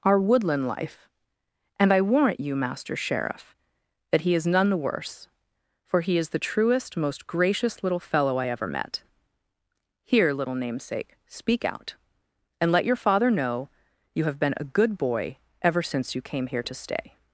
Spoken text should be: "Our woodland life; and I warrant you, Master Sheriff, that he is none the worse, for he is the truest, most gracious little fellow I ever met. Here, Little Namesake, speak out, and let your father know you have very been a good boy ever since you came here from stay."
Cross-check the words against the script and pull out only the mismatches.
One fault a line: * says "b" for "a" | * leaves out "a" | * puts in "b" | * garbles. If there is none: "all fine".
* leaves out "very"
* says "to" for "from"